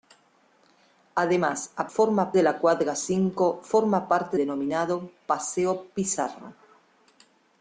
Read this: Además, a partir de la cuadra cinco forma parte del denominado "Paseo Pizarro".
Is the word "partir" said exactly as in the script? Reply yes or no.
no